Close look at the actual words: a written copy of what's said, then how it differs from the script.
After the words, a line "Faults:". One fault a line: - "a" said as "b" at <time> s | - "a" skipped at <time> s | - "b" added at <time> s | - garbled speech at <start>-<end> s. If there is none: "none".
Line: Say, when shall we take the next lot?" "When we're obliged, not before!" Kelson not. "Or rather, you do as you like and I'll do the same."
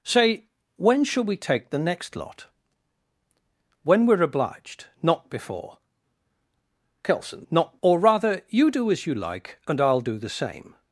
Say, when shall we take the next lot?" "When we're obliged, not before!" Kelson not. "Or rather, you do as you like and I'll do the same."
Faults:
none